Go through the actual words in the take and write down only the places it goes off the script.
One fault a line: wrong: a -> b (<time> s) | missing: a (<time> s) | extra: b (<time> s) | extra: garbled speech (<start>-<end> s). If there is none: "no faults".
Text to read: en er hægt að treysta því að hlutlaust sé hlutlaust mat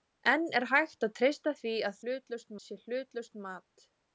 no faults